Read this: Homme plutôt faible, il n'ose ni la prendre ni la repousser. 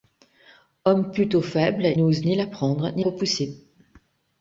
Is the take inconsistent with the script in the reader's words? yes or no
yes